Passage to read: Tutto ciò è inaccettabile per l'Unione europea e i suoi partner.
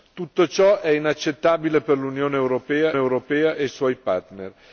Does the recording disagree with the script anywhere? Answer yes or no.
yes